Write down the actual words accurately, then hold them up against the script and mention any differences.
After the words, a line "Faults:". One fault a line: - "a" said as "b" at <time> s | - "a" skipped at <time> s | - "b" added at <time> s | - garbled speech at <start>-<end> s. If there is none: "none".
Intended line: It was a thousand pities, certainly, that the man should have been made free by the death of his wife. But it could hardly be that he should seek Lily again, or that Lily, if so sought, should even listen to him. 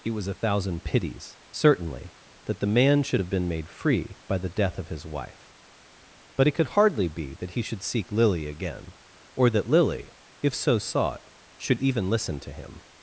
It was a thousand pities, certainly, that the man should have been made free by the death of his wife. But it could hardly be that he should seek Lily again, or that Lily, if so sought, should even listen to him.
Faults:
none